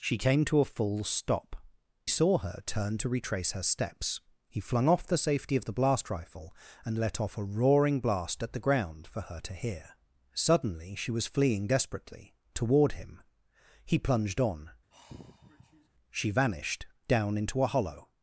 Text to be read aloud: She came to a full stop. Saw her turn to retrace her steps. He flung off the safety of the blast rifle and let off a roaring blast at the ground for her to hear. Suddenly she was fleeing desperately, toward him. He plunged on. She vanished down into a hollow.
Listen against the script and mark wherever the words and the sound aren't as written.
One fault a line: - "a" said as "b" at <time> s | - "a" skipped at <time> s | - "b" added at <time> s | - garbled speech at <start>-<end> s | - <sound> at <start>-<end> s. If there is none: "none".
- sigh at 14.9-15.9 s